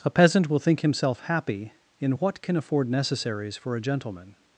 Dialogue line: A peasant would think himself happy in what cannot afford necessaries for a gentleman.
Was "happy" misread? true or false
false